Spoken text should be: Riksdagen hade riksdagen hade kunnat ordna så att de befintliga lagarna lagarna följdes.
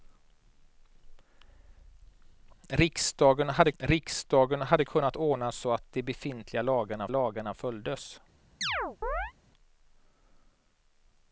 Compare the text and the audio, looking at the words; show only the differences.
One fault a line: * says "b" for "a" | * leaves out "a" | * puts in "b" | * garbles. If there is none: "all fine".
all fine